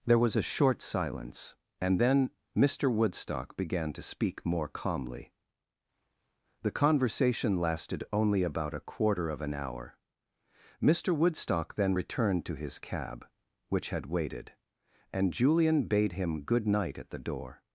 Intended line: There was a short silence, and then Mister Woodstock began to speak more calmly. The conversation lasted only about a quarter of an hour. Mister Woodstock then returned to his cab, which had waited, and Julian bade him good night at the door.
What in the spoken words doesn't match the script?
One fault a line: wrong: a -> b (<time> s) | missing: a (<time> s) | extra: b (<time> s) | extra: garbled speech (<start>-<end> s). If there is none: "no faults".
no faults